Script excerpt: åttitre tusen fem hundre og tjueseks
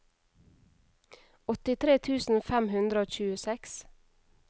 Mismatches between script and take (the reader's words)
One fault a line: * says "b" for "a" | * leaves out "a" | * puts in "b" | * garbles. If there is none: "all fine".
all fine